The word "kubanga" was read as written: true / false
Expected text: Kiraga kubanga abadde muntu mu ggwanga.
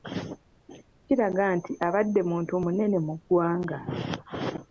false